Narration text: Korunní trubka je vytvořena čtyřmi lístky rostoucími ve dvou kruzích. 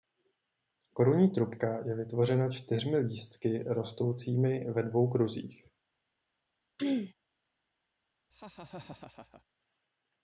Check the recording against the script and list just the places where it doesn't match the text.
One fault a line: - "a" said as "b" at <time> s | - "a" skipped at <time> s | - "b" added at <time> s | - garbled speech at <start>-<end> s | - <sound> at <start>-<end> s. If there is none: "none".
- throat clearing at 6.8-7.1 s
- laugh at 8.3-9.4 s